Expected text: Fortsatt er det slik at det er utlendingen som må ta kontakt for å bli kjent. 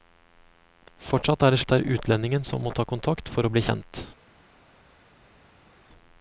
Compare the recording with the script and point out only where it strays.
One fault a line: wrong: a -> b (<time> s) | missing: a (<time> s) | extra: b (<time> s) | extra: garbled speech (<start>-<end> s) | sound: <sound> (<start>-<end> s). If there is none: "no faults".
missing: slik (1.6 s)